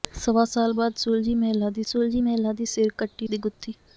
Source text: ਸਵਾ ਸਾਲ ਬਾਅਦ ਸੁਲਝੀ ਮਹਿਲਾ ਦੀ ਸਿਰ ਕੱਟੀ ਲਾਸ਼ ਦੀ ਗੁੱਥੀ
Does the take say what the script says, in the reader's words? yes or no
no